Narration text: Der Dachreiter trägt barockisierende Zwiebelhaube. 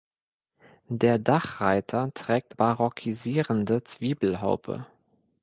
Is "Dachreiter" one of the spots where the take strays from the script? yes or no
no